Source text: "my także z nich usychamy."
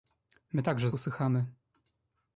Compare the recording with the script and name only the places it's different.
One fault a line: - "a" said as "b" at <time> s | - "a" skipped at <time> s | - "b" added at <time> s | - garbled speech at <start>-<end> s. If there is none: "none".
- "nich" skipped at 0.9 s